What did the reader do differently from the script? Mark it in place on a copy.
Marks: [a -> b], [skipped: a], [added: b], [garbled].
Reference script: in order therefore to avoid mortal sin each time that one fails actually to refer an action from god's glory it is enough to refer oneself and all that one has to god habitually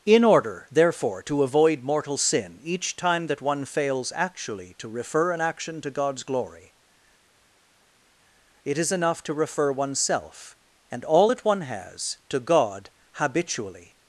in order therefore to avoid mortal sin each time that one fails actually to refer an action [from -> to] god's glory it is enough to refer oneself and all that one has to god habitually